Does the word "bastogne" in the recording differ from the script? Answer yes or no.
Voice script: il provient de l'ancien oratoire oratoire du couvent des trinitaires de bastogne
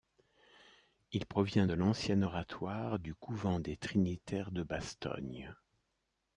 no